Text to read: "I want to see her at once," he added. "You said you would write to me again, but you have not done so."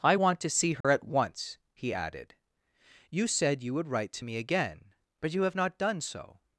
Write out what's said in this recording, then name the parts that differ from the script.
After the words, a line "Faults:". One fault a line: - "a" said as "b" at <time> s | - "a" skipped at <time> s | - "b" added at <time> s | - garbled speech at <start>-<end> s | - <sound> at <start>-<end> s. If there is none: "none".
"I want to see her at once," he added. "You said you would write to me again, but you have not done so."
Faults:
- dropout at 0.8-0.8 s